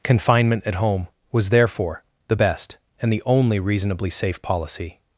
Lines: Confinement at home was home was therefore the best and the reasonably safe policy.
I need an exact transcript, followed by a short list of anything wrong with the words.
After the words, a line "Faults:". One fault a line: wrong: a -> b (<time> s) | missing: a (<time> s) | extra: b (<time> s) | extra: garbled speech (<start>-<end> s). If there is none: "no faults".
Confinement at home was therefore the best and the only reasonably safe policy.
Faults:
missing: home was (1.5 s)
extra: only (3.2 s)